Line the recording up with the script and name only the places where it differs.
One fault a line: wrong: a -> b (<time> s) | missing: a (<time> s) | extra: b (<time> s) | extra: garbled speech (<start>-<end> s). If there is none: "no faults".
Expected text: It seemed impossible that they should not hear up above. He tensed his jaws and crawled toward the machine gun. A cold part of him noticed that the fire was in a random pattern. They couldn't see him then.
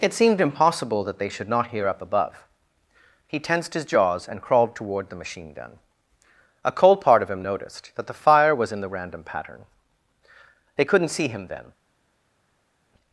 wrong: a -> the (8.8 s)